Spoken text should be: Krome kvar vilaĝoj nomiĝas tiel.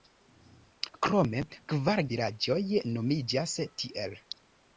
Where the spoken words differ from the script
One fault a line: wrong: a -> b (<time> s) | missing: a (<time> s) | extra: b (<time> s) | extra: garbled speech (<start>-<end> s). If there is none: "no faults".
no faults